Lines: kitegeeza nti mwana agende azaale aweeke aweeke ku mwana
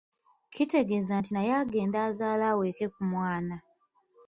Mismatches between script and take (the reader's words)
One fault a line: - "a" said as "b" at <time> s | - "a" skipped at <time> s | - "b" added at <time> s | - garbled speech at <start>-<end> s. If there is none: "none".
- "mwana" said as "naye" at 1.3 s
- "aweeke" skipped at 2.8 s